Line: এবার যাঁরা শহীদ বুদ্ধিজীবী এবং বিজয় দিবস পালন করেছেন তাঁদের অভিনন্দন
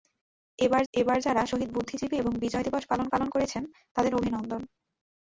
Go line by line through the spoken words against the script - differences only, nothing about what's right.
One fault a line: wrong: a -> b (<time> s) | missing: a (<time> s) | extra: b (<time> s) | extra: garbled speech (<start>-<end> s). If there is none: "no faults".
extra: এবার (0.9 s)
extra: পালন (3.1 s)